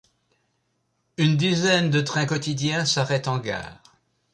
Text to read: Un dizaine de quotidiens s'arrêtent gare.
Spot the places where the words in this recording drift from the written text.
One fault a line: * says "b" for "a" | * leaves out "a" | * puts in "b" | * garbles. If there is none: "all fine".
* says "Une" for "Un"
* puts in "trains"
* puts in "en"